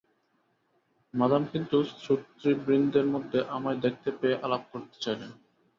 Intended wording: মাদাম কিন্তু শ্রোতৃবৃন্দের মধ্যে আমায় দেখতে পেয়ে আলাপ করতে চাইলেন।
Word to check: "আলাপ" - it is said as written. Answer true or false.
true